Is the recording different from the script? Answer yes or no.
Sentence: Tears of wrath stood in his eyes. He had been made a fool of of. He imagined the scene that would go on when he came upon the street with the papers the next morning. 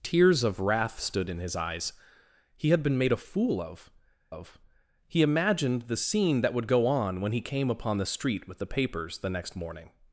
no